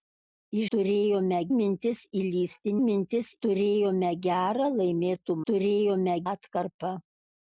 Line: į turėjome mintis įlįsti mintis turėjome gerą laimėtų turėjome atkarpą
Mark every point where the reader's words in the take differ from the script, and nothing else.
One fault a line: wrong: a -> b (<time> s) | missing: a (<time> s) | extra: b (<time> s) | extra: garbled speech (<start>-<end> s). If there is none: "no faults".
no faults